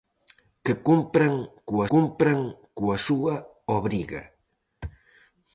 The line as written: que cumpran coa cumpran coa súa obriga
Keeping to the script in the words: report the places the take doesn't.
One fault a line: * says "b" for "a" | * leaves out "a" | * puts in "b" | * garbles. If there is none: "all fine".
all fine